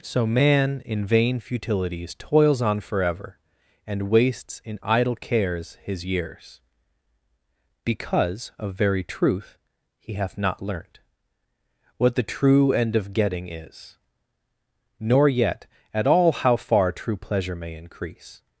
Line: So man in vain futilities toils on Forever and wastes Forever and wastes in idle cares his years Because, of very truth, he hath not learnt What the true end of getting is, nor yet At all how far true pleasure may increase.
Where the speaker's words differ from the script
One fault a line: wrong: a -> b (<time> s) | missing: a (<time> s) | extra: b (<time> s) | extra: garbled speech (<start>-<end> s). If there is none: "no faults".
missing: Forever and wastes (4.6 s)